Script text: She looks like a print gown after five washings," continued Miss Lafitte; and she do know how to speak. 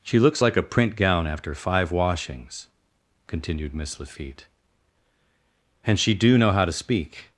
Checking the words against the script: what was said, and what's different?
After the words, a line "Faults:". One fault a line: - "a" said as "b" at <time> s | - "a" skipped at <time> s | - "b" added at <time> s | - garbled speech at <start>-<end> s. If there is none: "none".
She looks like a print gown after five washings," continued Miss Lafitte; and she do know how to speak.
Faults:
none